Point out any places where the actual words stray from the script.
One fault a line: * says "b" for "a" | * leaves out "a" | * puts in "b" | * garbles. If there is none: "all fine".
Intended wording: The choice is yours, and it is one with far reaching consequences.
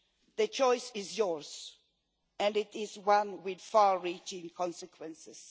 all fine